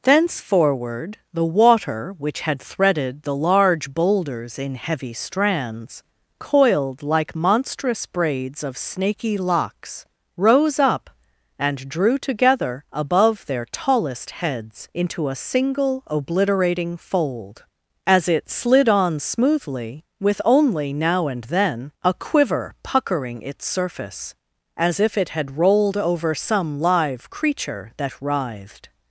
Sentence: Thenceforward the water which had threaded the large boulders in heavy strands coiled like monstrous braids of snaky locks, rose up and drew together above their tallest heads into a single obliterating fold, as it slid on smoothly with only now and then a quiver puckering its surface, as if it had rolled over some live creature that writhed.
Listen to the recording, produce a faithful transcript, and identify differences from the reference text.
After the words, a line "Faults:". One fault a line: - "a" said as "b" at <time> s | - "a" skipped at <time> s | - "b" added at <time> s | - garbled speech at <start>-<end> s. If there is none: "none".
Thenceforward the water which had threaded the large boulders in heavy strands coiled like monstrous braids of snaky locks, rose up and drew together above their tallest heads into a single obliterating fold, as it slid on smoothly with only now and then a quiver puckering its surface, as if it had rolled over some live creature that writhed.
Faults:
none